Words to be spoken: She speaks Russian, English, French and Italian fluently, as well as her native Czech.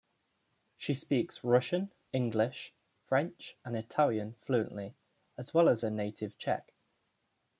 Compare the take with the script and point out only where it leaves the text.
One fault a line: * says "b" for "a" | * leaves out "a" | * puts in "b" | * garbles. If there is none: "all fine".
all fine